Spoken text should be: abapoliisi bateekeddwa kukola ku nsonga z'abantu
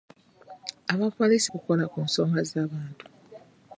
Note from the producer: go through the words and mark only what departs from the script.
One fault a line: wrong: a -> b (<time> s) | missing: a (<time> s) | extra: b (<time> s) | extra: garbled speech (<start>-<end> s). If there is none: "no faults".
missing: bateekeddwa (1.5 s)